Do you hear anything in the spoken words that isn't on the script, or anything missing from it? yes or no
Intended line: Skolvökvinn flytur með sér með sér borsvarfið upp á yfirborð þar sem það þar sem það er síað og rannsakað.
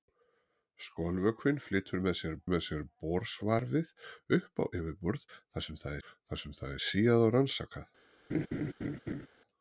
no